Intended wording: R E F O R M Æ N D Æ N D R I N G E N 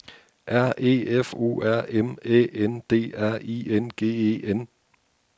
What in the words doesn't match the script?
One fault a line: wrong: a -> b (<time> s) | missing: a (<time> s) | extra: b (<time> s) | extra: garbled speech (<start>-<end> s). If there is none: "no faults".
missing: Æ N D (3.1 s)